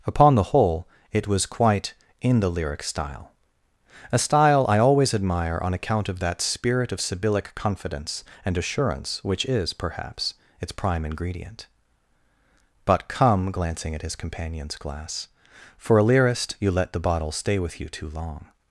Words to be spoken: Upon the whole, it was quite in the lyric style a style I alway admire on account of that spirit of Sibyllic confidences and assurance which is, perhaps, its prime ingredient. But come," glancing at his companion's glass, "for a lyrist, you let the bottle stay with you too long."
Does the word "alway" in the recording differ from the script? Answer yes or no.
yes